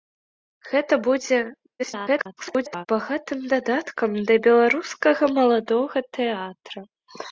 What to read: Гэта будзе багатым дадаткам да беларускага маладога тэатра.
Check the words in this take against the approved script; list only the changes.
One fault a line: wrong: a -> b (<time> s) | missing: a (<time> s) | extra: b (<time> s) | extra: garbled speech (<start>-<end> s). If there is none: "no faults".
extra: garbled speech (1.8-2.9 s)